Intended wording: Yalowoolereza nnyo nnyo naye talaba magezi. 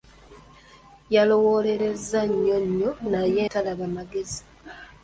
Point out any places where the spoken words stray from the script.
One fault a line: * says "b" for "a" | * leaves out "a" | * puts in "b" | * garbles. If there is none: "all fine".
all fine